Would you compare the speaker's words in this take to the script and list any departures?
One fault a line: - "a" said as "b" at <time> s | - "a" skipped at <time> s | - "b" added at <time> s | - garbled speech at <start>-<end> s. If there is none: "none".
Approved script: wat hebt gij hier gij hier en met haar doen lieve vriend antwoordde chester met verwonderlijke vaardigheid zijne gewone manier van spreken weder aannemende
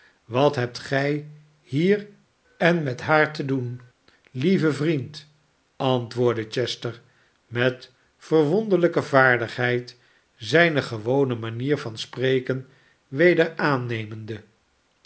- "gij hier" skipped at 2.1 s
- "te" added at 3.3 s